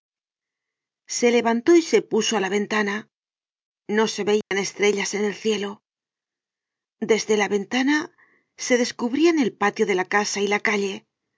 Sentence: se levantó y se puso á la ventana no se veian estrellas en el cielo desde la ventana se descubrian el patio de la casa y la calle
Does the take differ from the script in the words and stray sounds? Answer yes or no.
yes